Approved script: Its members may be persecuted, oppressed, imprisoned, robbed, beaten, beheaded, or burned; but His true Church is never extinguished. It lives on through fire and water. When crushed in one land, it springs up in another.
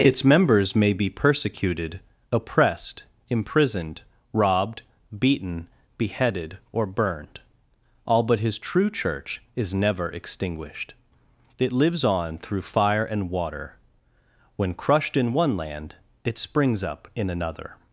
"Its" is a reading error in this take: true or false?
false